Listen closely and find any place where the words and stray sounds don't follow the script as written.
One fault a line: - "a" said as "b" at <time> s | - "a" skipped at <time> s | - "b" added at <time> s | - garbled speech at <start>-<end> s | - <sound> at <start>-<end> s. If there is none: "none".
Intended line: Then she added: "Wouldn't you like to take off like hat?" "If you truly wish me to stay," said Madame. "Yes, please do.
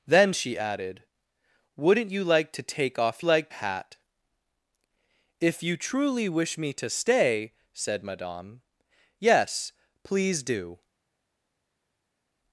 none